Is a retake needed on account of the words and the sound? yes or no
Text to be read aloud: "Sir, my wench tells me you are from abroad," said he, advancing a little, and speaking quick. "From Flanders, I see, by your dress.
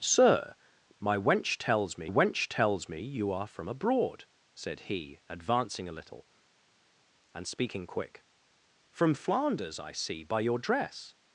yes